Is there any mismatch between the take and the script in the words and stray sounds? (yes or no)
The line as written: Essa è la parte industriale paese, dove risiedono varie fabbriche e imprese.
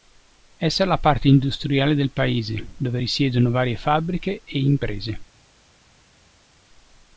yes